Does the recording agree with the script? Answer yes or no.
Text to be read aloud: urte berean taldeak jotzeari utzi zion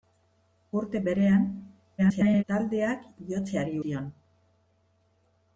no